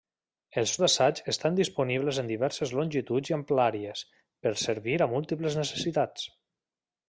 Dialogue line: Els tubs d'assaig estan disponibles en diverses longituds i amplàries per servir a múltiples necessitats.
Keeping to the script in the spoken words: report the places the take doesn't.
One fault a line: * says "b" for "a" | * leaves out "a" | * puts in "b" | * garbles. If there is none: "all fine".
* leaves out "tubs"